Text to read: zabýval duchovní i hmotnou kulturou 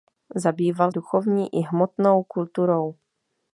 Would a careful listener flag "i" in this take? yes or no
no